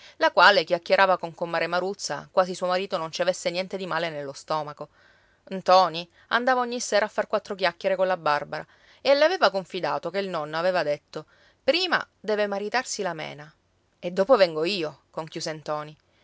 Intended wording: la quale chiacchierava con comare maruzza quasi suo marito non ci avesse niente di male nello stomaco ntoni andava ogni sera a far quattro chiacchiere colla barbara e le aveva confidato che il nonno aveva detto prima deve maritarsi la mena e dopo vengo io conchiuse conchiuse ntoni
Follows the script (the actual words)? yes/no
no